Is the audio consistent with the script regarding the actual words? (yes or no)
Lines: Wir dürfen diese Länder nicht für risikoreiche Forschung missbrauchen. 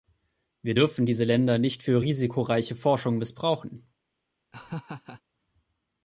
yes